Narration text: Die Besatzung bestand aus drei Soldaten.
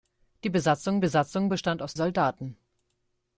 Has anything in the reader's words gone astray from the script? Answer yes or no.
yes